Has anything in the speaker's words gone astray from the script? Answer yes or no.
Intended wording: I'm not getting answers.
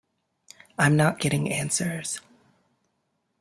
no